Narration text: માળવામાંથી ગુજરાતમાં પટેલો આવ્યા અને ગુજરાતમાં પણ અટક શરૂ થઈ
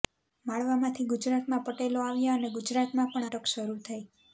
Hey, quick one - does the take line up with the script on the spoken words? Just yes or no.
yes